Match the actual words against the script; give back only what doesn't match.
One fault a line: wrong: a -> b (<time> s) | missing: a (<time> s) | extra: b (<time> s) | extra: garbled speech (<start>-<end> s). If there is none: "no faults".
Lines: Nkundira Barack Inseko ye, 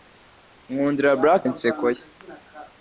no faults